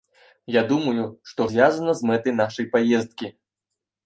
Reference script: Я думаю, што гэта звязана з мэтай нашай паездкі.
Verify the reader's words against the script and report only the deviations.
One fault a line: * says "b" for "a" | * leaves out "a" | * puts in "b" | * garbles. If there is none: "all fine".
* leaves out "гэта"